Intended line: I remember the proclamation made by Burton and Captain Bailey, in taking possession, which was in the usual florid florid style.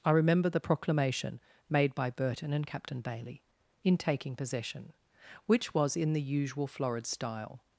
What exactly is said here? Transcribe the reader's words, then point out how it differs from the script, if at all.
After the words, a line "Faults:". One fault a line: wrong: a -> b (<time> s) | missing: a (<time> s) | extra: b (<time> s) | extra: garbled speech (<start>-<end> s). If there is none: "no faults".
I remember the proclamation made by Burton and Captain Bailey, in taking possession, which was in the usual florid style.
Faults:
missing: florid (7.1 s)